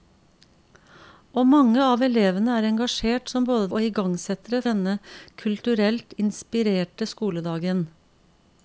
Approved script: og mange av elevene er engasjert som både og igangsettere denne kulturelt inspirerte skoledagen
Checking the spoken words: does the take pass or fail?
pass